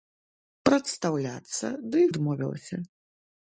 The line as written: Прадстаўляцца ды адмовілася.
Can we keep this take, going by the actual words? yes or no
yes